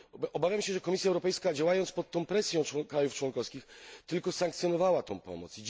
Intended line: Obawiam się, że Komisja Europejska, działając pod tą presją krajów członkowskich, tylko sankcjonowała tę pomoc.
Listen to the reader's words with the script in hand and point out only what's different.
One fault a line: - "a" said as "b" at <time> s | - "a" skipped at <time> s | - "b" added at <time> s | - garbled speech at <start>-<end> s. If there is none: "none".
none